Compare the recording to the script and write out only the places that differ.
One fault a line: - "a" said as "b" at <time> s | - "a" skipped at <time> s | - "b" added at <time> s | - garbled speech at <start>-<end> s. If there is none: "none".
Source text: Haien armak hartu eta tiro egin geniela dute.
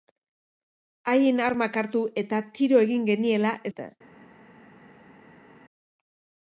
none